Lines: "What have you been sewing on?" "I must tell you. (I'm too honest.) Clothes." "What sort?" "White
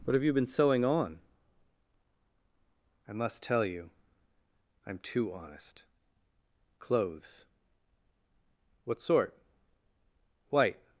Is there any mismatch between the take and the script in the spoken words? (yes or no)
no